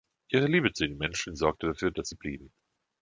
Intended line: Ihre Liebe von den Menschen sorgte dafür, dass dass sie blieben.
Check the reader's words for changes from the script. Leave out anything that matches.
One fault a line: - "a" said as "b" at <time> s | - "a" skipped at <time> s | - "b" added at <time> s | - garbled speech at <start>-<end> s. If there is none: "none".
- "von" said as "zu" at 0.7 s
- "dass" skipped at 2.1 s